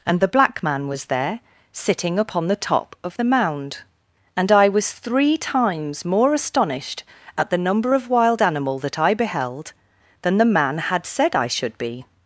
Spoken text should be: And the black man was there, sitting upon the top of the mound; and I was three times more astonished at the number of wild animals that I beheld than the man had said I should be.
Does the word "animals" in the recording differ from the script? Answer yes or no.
yes